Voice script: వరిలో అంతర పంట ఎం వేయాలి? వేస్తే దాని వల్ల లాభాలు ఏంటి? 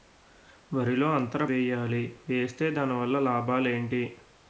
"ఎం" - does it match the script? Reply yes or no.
no